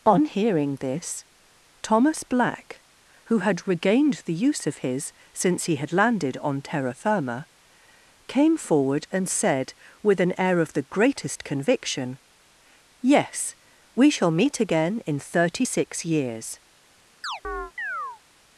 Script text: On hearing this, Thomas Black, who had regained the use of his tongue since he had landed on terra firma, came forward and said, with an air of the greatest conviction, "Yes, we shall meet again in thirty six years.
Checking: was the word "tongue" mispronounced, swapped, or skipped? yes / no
yes